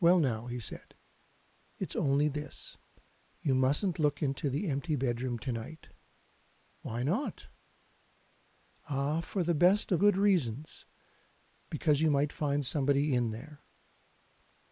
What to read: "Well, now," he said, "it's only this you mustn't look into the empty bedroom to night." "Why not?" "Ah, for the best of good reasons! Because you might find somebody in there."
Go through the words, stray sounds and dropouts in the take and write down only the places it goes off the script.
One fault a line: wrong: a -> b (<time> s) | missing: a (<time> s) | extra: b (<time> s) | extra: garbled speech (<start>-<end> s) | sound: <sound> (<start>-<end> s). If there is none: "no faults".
no faults